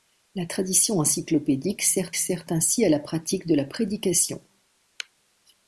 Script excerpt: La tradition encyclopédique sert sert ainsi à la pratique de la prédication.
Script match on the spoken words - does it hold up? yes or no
yes